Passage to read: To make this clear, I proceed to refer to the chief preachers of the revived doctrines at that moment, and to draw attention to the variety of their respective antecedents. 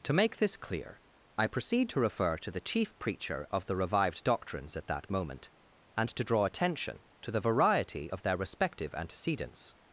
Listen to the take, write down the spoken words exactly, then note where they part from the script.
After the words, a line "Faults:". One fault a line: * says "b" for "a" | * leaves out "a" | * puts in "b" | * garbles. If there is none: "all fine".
To make this clear, I proceed to refer to the chief preacher of the revived doctrines at that moment, and to draw attention to the variety of their respective antecedents.
Faults:
* says "preacher" for "preachers"